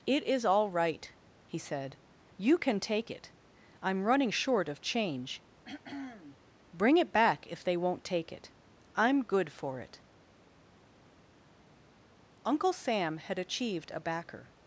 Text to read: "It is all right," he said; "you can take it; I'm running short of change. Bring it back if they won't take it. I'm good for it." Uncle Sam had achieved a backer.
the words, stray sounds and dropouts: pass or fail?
fail